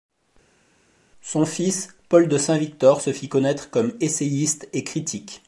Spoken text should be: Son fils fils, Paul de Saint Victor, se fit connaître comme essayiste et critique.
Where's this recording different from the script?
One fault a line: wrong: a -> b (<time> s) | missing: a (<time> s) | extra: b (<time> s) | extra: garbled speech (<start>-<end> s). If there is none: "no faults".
missing: fils (1.9 s)